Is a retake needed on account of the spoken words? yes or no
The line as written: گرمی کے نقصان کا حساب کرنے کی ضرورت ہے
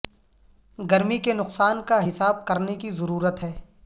no